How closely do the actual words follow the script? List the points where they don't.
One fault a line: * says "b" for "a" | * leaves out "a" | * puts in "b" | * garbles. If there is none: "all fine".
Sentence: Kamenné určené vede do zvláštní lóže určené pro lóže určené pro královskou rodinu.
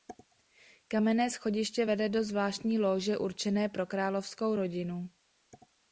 * says "schodiště" for "určené"
* leaves out "lóže určené pro"